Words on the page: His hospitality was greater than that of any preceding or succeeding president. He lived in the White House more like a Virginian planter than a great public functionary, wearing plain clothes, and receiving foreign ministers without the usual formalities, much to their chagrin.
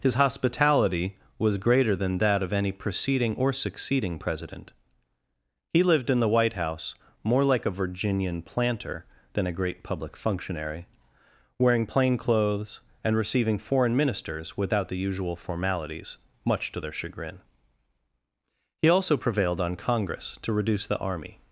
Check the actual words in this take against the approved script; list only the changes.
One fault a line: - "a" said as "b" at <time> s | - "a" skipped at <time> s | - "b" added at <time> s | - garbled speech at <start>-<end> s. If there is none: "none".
- "He also prevailed on Congress to reduce the army" added at 18.8 s